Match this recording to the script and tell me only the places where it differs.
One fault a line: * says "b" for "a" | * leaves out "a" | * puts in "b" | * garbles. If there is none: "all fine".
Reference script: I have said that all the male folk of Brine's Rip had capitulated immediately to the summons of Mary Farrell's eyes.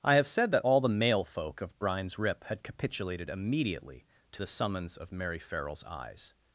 all fine